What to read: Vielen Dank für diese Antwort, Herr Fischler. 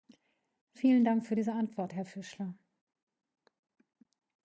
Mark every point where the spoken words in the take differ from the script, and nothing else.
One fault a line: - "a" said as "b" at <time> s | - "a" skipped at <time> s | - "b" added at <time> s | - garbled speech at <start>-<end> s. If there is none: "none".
none